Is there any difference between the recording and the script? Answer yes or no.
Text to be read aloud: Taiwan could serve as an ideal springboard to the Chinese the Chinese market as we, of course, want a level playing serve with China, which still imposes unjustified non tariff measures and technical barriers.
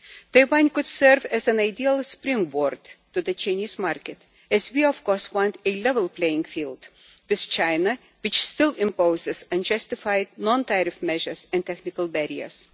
yes